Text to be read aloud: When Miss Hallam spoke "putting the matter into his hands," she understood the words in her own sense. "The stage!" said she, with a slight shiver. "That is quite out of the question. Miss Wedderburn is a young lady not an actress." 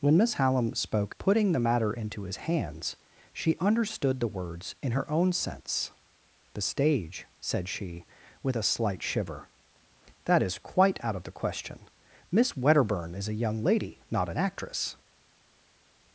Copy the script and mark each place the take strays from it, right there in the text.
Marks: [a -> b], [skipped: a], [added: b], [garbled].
When Miss Hallam spoke "putting the matter into his hands," she understood the words in her own sense. "The stage!" said she, with a slight shiver. "That is quite out of the question. Miss Wedderburn is a young lady not an actress."